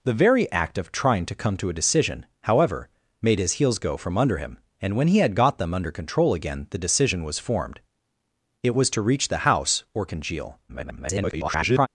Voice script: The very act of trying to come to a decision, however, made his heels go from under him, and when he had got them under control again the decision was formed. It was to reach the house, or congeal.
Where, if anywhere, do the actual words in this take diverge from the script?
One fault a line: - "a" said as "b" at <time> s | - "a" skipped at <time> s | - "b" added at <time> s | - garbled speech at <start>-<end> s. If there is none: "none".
- garbled speech at 10.7-11.9 s